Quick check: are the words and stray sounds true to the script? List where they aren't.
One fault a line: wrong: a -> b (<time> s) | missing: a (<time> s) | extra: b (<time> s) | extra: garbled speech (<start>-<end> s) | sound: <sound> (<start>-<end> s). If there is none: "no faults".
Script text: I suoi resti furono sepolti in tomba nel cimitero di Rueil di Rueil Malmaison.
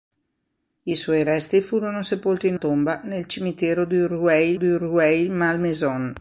no faults